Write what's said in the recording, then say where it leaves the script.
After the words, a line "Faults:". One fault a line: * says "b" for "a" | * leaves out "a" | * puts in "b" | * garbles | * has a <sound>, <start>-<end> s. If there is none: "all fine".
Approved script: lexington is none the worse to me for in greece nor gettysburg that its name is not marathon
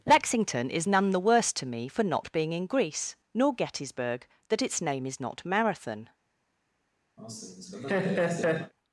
lexington is none the worse to me for not being in greece nor gettysburg that its name is not marathon
Faults:
* puts in "not being"
* has a laugh, 7.2-8.7 s